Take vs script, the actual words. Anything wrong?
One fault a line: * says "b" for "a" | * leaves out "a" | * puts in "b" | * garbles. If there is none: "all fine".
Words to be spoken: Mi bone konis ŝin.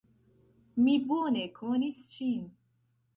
all fine